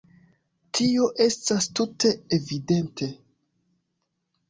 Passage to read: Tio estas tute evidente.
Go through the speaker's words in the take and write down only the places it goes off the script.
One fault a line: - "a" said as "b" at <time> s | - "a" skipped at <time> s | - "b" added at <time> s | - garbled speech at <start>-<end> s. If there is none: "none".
none